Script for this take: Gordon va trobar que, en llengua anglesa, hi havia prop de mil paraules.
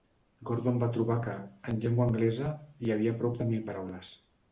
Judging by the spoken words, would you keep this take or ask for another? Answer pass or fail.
pass